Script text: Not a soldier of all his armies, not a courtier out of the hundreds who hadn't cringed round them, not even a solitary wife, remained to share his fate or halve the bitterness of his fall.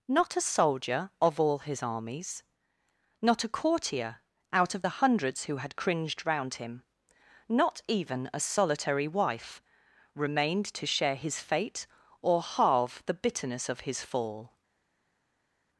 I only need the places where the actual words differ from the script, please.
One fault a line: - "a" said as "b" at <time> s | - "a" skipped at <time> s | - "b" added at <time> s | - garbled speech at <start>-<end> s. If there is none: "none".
- "hadn't" said as "had" at 5.6 s
- "them" said as "him" at 6.5 s